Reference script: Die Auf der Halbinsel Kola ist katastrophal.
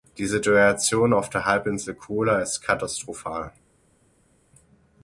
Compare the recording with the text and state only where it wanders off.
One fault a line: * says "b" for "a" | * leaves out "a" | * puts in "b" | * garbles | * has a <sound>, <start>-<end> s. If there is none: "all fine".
* puts in "Situation"